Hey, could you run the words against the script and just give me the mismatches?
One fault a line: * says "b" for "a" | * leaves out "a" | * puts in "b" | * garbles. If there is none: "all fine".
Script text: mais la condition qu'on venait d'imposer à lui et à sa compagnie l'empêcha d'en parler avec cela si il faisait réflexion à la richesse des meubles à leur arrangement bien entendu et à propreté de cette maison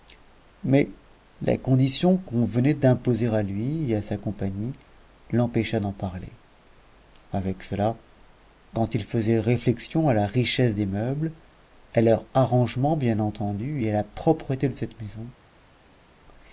* says "quand" for "si"
* puts in "la"